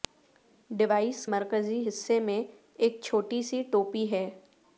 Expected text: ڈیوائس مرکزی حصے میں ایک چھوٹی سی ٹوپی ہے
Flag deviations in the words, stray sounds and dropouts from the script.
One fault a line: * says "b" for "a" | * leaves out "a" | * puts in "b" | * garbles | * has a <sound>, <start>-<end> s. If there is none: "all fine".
all fine